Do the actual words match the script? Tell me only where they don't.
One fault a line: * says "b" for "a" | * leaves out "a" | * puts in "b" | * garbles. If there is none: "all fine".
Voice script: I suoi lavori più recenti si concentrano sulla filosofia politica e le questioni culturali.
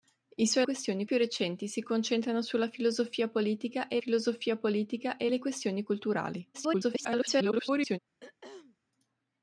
* says "questioni" for "lavori"
* puts in "filosofia politica e"
* garbles